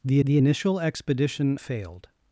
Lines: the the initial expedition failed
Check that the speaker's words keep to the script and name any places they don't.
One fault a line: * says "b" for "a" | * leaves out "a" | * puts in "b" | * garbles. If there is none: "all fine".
all fine